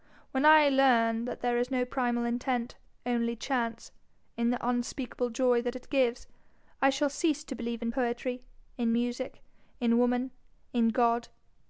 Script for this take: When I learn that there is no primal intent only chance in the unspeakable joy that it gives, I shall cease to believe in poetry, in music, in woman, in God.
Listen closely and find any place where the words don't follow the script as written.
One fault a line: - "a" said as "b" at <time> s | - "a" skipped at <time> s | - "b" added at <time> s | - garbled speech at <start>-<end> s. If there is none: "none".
none